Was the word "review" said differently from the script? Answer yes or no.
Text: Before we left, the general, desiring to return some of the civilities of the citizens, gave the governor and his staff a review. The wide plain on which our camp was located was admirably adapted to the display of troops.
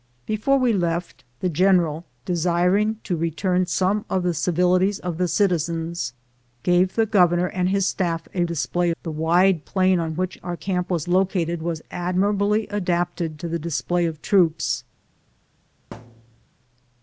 yes